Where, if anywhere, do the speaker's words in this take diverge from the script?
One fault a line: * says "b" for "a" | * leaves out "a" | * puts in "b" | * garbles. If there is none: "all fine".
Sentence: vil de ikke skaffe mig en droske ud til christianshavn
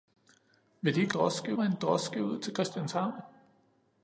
* says "droske" for "skaffe"